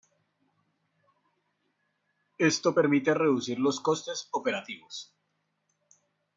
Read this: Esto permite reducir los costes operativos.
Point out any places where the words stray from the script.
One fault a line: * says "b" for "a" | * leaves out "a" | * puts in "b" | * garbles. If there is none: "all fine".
all fine